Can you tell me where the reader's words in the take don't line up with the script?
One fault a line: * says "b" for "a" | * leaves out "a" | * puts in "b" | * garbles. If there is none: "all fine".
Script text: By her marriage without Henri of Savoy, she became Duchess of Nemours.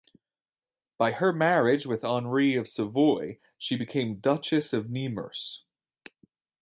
* says "with" for "without"